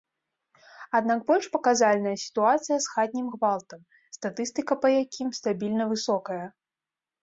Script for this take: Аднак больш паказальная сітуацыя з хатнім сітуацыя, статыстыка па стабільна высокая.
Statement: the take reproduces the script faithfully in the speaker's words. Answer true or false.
false